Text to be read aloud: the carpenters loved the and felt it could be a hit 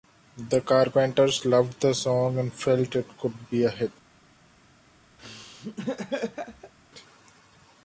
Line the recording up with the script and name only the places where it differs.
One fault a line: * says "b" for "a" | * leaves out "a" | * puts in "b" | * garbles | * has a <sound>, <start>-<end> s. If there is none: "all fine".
* puts in "song"
* has a laugh, 5.2-6.7 s